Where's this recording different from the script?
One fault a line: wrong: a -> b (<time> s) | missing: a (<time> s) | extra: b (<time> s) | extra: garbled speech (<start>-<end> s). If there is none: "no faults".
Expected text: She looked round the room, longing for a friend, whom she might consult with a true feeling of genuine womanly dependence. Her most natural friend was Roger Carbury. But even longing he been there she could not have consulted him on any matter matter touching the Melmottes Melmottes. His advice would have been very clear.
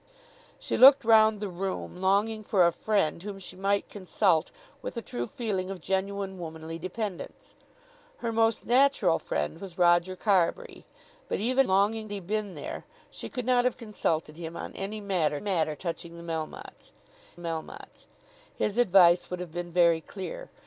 no faults